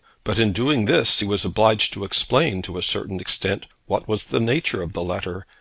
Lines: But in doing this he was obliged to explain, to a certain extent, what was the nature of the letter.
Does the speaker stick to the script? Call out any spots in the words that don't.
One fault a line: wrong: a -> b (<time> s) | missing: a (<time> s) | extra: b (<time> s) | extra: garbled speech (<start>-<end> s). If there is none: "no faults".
no faults